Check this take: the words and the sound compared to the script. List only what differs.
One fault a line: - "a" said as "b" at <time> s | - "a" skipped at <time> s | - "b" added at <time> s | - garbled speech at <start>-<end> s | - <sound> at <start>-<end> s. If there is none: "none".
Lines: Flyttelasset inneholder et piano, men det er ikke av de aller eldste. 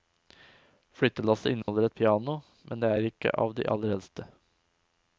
- dropout at 1.6-1.7 s